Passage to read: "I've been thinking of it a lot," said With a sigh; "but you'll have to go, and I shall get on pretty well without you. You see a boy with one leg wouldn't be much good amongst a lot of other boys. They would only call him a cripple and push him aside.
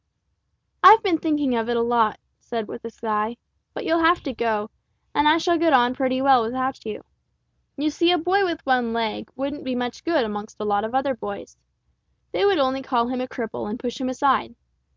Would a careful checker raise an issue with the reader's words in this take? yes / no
no